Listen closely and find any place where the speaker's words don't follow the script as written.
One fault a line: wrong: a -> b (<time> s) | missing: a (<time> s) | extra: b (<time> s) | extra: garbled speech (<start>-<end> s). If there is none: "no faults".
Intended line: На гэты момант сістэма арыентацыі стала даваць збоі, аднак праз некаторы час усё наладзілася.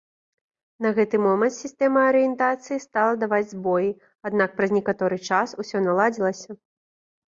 no faults